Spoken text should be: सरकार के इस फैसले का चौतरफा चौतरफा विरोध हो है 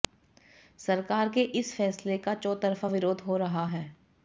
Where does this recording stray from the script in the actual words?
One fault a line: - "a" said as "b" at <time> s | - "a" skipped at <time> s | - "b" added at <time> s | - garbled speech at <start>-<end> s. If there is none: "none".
- "चौतरफा" skipped at 2.9 s
- "रहा" added at 3.4 s